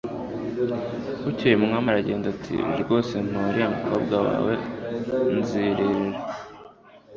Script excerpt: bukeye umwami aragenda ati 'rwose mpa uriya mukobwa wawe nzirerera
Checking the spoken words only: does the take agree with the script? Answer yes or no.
yes